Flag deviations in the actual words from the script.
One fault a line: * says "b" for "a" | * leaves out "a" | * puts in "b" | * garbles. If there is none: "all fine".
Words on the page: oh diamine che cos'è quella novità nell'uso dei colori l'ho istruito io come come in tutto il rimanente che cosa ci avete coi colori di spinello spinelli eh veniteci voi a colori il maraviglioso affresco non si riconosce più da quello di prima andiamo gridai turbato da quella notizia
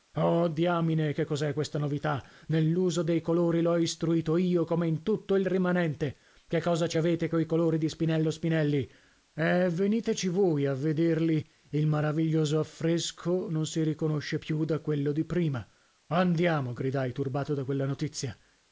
* says "questa" for "quella"
* leaves out "come"
* says "vederli" for "colori"